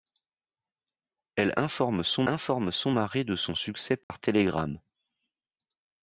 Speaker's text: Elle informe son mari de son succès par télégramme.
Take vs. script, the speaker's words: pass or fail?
fail